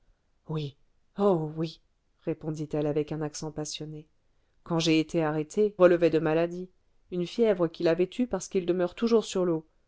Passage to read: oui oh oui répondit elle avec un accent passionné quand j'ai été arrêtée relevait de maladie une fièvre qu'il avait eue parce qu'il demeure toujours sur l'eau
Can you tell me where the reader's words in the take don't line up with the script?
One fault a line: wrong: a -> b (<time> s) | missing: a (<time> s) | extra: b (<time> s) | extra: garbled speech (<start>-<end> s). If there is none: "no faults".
no faults